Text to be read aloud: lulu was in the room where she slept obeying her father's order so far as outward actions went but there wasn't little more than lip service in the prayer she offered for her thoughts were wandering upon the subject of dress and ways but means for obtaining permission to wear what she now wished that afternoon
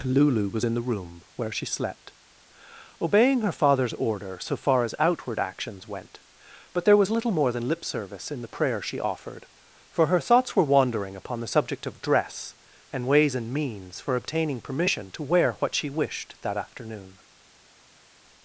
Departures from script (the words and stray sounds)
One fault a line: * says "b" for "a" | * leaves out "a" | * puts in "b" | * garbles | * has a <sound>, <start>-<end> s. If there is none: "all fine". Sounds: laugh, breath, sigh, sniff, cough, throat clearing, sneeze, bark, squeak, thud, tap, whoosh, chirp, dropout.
* says "was" for "wasn't"
* says "and" for "but"
* leaves out "now"